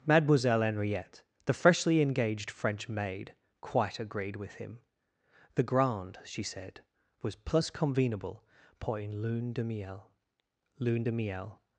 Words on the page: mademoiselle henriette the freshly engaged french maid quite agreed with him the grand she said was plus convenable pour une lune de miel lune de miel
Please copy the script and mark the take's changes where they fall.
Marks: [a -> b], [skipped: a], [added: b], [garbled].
mademoiselle henriette the freshly engaged french maid quite agreed with him the grand she said was plus convenable pour une lune de miel lune de miel